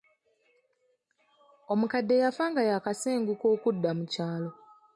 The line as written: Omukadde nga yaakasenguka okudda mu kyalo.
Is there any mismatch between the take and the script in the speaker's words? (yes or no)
yes